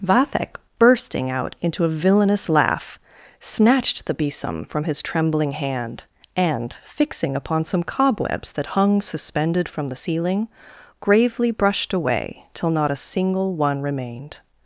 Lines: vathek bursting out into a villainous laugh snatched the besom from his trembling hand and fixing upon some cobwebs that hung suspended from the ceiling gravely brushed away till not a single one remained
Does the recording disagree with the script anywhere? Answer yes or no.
no